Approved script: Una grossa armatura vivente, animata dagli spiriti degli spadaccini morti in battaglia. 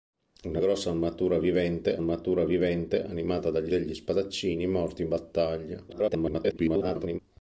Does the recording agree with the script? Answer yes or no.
no